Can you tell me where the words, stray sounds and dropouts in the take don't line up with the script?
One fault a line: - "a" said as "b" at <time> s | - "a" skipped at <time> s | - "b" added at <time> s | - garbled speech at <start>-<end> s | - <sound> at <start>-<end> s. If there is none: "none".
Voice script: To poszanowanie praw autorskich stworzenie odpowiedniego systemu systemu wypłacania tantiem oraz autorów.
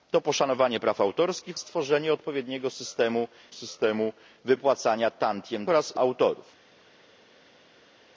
none